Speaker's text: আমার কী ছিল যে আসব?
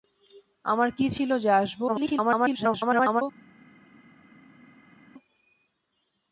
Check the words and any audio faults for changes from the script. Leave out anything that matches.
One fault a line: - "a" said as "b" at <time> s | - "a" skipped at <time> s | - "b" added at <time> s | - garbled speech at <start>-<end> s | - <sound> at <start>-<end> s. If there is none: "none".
- garbled speech at 1.9-3.2 s